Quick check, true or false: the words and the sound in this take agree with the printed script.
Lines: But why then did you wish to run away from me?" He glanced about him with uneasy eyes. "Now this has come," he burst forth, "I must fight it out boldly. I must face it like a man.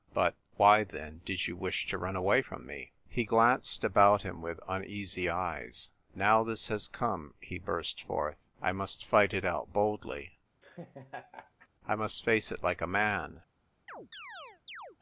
false